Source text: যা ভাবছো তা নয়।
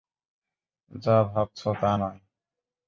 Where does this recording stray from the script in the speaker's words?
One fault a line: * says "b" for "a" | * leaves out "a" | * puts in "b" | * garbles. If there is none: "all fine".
all fine